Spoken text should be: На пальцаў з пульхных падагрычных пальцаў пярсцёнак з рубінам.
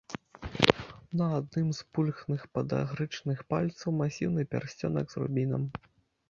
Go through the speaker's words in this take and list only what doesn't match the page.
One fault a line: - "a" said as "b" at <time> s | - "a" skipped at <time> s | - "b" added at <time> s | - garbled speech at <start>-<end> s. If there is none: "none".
- "пальцаў" said as "адным" at 1.4 s
- "масіўны" added at 4.0 s